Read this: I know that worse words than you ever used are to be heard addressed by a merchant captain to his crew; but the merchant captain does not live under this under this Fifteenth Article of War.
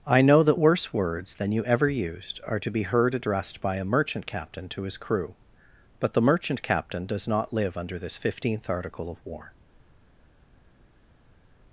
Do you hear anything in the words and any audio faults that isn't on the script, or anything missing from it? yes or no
yes